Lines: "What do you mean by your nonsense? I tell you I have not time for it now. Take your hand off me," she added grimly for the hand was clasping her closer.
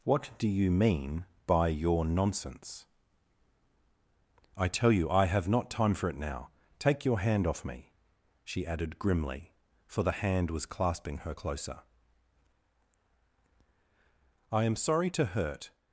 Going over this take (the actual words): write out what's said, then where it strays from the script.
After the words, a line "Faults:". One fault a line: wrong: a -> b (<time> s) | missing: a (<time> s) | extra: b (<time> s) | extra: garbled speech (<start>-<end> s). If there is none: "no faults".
"What do you mean by your nonsense? I tell you I have not time for it now. Take your hand off me," she added grimly for the hand was clasping her closer. "I am sorry to hurt
Faults:
extra: I am sorry to hurt (14.5 s)